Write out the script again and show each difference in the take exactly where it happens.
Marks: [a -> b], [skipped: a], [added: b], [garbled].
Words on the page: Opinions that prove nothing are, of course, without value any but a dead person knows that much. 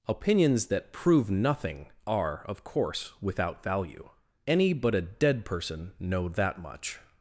Opinions that prove nothing are, of course, without value any but a dead person [knows -> know] that much.